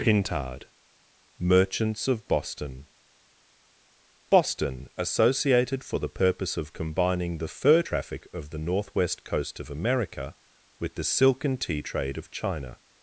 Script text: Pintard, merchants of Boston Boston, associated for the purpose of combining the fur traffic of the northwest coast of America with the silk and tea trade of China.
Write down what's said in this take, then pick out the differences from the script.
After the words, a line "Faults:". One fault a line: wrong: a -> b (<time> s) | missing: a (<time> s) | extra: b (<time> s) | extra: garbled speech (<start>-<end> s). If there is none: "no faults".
Pintard, merchants of Boston Boston, associated for the purpose of combining the fur traffic of the northwest coast of America with the silk and tea trade of China.
Faults:
no faults